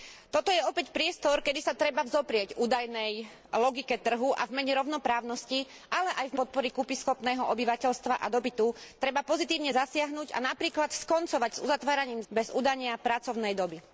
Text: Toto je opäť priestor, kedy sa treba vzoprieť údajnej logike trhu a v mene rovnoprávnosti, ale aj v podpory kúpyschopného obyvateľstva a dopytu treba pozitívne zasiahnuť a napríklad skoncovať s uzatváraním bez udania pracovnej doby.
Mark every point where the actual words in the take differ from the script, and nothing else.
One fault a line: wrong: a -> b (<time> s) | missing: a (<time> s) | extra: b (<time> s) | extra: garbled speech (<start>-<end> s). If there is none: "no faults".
no faults